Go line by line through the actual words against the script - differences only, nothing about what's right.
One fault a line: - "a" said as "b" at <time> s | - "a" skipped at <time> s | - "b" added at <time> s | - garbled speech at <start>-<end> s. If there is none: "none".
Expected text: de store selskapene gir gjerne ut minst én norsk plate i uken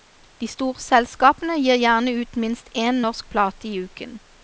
none